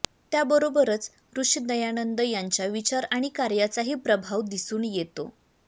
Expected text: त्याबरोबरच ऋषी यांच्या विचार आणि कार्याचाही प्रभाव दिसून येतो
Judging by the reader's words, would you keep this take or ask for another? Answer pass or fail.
fail